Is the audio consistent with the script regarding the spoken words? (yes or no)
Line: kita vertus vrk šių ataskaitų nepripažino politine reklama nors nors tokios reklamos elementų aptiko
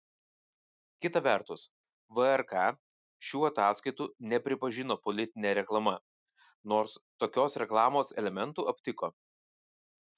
no